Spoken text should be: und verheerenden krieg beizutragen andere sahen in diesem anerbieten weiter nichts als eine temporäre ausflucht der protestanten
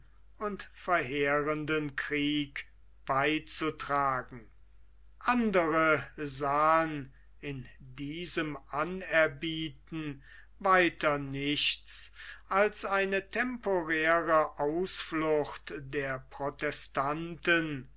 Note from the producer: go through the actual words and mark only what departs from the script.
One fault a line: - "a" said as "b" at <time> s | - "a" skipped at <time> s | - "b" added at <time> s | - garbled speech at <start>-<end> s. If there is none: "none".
none